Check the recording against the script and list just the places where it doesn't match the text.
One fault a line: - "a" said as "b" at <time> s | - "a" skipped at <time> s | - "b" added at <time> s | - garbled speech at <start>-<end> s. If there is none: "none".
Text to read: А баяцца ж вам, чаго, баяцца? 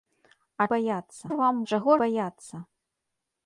none